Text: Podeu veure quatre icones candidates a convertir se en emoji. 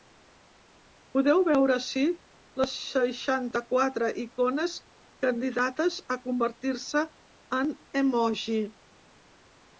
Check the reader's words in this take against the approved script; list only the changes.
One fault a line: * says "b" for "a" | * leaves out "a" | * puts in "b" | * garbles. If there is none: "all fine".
* puts in "ací les seixanta"